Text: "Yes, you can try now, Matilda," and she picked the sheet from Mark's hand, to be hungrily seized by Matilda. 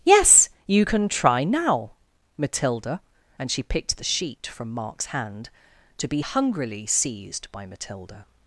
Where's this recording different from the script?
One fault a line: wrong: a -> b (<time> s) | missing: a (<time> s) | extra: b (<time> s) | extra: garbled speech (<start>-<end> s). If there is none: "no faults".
no faults